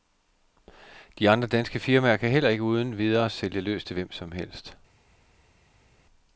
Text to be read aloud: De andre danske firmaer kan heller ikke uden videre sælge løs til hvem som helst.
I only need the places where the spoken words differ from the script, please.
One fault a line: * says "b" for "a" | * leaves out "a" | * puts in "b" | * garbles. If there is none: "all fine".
all fine